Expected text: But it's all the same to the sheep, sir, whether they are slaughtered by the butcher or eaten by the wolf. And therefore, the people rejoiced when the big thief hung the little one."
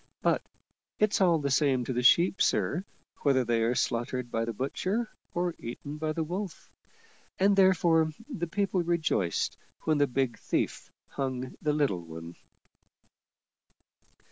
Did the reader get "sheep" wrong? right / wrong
right